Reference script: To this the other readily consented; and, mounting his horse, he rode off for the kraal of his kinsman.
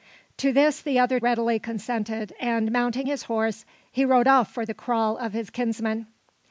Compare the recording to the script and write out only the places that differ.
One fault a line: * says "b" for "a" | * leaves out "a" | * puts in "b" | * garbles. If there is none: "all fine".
all fine